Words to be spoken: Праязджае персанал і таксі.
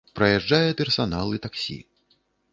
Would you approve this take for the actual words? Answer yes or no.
yes